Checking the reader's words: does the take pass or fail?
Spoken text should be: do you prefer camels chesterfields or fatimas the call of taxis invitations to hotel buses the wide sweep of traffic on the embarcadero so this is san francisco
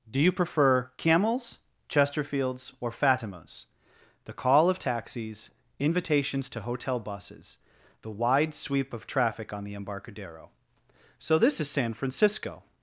pass